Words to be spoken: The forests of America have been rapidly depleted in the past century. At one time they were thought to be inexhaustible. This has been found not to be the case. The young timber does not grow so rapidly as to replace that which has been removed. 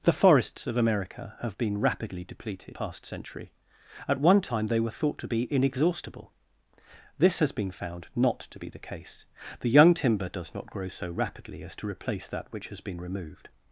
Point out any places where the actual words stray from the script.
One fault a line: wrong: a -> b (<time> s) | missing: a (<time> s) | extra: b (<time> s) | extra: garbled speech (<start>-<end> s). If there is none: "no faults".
missing: in the (2.8 s)